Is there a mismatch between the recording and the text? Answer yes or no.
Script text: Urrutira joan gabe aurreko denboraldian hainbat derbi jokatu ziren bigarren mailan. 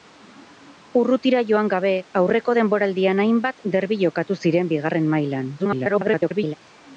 yes